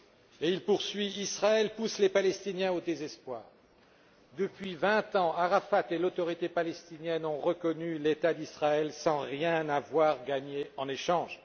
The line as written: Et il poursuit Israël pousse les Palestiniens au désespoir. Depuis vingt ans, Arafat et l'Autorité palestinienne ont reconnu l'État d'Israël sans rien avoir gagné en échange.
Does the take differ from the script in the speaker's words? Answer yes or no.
no